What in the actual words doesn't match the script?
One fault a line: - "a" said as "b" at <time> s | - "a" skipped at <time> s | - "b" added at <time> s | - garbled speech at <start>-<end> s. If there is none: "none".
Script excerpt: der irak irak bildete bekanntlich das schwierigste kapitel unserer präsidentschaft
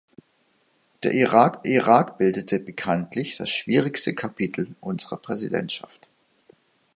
none